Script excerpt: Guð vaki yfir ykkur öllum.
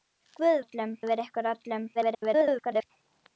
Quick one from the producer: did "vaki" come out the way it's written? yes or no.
no